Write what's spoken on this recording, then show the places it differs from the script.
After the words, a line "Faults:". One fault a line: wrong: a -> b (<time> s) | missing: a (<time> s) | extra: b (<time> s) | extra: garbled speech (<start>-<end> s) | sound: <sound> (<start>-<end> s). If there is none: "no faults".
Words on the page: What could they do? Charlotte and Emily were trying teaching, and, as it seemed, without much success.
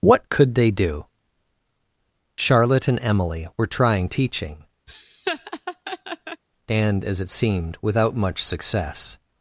What could they do? Charlotte and Emily were trying teaching, and, as it seemed, without much success.
Faults:
sound: laugh (4.9-6.4 s)